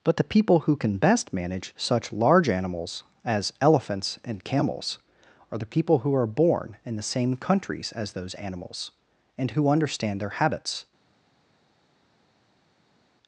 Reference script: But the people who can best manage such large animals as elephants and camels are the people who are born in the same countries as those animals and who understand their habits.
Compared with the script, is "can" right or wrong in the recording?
right